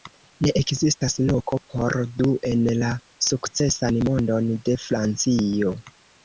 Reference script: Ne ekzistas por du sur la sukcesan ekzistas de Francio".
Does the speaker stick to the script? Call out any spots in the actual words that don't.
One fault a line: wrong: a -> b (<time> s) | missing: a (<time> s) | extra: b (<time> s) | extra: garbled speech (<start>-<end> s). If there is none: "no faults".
extra: loko (1.3 s)
wrong: sur -> en (2.5 s)
wrong: ekzistas -> mondon (4.1 s)